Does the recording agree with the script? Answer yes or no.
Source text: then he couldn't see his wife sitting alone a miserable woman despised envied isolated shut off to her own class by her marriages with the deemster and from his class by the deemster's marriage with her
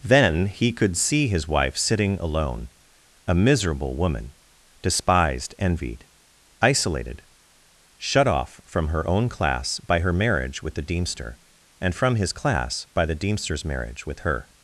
no